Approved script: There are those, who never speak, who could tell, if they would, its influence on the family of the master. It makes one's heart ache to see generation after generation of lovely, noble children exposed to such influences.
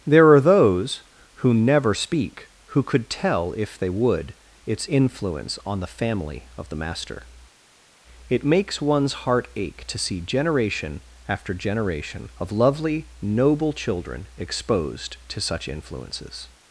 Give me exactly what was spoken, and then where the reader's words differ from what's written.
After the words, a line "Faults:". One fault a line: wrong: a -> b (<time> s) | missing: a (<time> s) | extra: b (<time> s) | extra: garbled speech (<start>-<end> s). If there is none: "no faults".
There are those, who never speak, who could tell, if they would, its influence on the family of the master. It makes one's heart ache to see generation after generation of lovely, noble children exposed to such influences.
Faults:
no faults